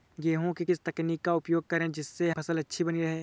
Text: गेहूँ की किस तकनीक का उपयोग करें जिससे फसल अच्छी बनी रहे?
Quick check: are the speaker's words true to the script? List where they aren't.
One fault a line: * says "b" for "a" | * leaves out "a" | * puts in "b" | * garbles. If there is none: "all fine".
all fine